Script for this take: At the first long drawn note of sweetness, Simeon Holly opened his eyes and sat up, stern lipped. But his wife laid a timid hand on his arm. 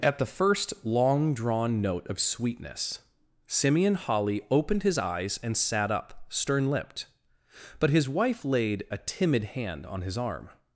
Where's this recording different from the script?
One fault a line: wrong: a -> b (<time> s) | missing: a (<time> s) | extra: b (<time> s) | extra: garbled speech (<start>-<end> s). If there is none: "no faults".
no faults